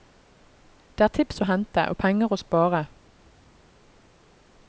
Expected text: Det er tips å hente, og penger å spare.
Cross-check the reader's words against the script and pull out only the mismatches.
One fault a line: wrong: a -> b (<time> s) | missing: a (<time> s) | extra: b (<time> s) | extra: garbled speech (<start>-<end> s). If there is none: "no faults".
no faults